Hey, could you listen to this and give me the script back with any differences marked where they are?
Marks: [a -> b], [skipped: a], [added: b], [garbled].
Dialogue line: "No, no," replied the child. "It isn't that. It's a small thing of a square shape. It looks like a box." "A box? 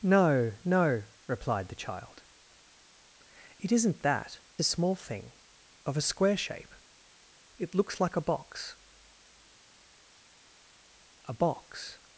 "No, no," replied the child. "It isn't that. [skipped: It's] a small thing of a square shape. It looks like a box." "A box?